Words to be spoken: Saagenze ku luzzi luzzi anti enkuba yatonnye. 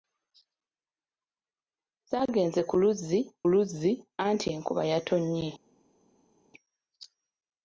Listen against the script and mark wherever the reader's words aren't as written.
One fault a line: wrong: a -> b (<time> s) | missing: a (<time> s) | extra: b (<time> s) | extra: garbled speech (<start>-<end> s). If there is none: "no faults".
no faults